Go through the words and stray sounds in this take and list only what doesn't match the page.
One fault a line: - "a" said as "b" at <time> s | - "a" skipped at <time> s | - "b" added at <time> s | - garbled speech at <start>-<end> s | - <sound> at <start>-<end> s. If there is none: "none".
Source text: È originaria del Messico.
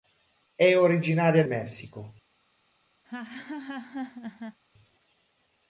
- "del" skipped at 1.4 s
- laugh at 3.0-4.6 s